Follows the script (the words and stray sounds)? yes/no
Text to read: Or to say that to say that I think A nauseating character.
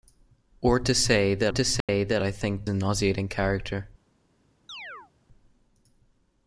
no